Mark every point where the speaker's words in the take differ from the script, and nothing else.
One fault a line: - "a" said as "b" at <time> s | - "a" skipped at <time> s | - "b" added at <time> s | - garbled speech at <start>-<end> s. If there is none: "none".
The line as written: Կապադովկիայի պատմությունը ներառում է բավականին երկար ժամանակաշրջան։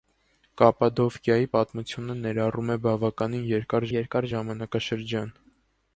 - "երկար" added at 3.9 s